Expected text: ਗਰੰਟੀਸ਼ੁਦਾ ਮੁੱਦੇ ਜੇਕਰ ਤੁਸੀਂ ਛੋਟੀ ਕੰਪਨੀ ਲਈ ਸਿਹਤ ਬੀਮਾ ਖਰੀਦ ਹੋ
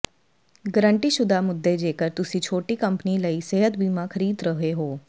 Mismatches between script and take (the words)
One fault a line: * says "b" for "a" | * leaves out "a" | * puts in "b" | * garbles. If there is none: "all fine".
* puts in "ਰਹੇ"